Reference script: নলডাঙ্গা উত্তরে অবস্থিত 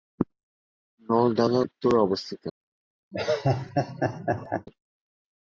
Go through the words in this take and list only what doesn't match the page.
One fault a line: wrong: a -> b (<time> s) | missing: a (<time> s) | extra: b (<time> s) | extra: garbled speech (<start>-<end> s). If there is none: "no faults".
no faults